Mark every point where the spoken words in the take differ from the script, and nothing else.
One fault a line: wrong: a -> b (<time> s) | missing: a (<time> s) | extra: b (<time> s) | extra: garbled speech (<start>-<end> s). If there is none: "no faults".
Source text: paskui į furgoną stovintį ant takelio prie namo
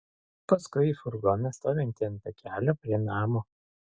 no faults